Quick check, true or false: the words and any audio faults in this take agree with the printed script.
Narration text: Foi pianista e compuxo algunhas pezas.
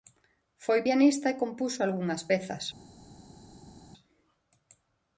true